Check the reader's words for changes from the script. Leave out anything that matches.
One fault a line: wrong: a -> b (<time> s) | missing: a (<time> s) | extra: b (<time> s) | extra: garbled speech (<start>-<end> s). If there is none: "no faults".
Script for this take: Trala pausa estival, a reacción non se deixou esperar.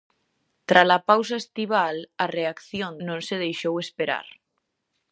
no faults